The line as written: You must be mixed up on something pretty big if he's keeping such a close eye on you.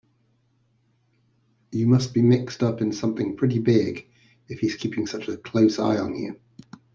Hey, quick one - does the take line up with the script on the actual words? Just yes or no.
no